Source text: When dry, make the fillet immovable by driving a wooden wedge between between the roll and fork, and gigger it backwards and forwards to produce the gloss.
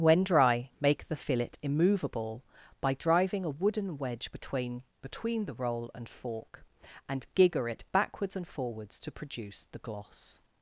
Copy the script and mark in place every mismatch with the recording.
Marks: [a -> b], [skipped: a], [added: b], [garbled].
When dry, make the fillet immovable by driving a wooden wedge between between the roll and fork, and gigger it backwards and forwards to produce the gloss.